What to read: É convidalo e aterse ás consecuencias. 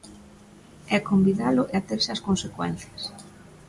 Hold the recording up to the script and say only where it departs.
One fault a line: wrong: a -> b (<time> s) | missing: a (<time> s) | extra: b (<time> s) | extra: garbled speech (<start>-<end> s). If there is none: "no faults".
no faults